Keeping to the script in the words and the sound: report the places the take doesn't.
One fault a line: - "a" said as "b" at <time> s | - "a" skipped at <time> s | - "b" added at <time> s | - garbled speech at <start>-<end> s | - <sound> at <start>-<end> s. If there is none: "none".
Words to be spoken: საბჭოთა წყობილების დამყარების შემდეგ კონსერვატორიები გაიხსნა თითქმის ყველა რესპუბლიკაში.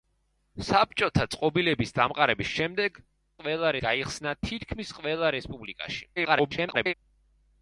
- "კონსერვატორიები" said as "ყველა" at 3.4 s
- garbled speech at 6.2-6.9 s